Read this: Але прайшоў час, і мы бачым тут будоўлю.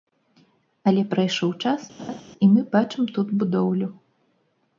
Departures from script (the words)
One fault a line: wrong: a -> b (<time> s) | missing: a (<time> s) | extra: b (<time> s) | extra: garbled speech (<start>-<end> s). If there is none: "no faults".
no faults